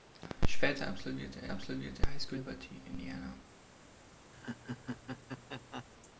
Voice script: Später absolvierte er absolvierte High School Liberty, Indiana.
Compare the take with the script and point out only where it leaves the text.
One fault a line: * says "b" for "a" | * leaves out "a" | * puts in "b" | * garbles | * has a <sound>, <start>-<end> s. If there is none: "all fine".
* has a laugh, 4.3-5.8 s